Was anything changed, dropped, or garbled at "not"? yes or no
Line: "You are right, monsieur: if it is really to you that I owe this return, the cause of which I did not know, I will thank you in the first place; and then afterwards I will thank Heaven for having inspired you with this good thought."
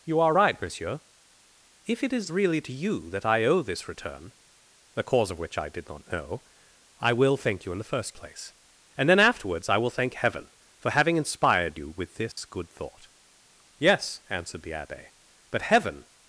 no